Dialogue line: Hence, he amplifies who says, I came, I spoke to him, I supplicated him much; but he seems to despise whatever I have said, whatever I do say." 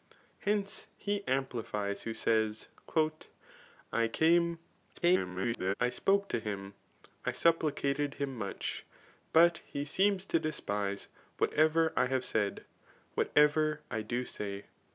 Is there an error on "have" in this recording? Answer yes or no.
no